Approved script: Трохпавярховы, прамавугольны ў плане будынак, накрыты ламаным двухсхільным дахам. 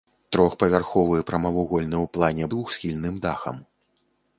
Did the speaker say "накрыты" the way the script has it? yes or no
no